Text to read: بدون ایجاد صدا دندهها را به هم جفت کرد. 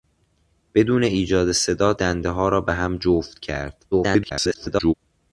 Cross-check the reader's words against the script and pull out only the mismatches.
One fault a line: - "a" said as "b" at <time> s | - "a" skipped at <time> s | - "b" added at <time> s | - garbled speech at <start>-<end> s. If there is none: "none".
- garbled speech at 3.9-4.9 s